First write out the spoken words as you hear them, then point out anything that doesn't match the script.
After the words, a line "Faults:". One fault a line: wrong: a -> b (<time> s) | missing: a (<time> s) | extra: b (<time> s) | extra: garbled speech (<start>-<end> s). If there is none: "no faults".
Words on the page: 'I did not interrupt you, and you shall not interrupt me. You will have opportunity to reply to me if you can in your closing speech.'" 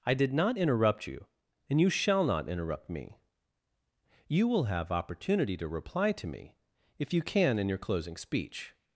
'I did not interrupt you, and you shall not interrupt me. You will have opportunity to reply to me if you can in your closing speech.'"
Faults:
no faults